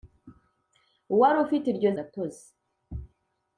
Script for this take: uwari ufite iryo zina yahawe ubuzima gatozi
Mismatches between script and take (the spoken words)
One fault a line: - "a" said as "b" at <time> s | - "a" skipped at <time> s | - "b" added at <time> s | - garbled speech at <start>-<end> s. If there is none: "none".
- "zina yahawe ubuzima" skipped at 1.9 s